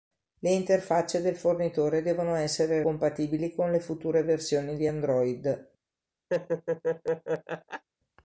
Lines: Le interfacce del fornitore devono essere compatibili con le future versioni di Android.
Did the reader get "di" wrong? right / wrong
right